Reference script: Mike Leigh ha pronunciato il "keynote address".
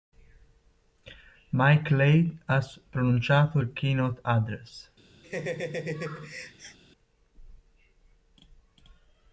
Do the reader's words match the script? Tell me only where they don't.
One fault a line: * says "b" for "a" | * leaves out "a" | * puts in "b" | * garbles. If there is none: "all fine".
all fine